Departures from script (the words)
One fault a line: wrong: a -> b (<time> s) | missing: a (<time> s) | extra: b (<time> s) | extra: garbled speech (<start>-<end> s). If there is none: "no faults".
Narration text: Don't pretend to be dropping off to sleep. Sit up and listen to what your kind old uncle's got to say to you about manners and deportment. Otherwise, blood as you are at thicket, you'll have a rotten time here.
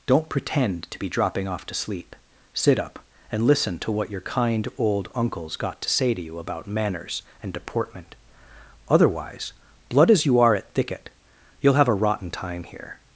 no faults